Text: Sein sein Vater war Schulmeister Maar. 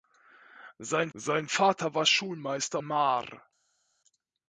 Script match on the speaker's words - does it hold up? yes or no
yes